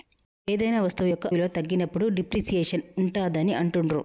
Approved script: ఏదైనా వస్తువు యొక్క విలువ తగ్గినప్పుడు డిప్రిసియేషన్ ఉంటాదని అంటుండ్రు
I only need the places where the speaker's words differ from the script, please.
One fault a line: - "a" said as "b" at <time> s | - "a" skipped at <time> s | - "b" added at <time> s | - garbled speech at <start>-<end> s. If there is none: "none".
none